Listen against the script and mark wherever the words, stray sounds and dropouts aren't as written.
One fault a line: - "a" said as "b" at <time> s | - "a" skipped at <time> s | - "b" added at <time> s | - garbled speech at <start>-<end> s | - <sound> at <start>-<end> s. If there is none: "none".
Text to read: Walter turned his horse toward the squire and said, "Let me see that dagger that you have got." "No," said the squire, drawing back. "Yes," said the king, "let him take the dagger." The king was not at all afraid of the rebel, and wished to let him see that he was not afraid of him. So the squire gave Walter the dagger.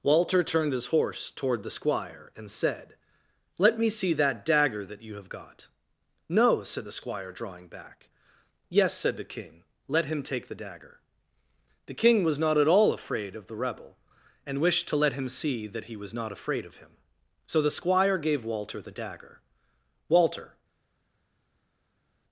- "Walter" added at 20.1 s